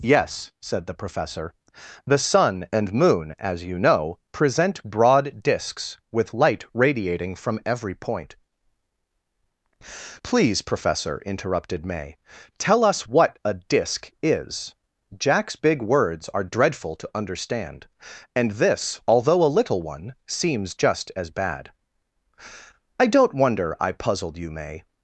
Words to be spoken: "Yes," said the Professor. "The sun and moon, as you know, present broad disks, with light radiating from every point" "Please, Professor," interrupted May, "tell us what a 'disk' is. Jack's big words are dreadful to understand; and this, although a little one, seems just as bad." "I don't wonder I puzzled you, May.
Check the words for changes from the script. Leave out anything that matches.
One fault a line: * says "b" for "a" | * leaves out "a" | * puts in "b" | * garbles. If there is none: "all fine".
all fine